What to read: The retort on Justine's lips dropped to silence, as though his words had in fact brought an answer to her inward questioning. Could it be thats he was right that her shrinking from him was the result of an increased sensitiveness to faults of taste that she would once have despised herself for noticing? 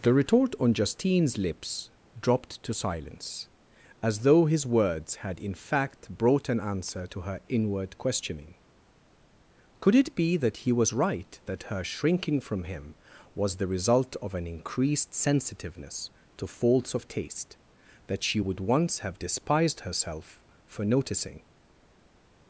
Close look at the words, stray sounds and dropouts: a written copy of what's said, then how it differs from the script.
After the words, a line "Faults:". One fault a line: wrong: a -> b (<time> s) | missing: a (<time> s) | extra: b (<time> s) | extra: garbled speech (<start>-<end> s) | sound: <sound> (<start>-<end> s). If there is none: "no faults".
The retort on Justine's lips dropped to silence, as though his words had in fact brought an answer to her inward questioning. Could it be that he was right that her shrinking from him was the result of an increased sensitiveness to faults of taste that she would once have despised herself for noticing?
Faults:
wrong: thats -> that (10.4 s)